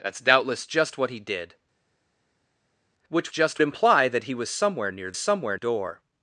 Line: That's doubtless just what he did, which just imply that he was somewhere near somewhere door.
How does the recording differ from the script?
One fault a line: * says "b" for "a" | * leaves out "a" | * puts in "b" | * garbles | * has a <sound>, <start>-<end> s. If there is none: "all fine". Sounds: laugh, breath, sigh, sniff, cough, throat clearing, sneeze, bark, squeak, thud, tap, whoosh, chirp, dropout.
all fine